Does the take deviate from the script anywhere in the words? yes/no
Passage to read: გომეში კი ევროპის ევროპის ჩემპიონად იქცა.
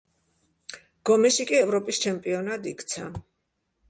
yes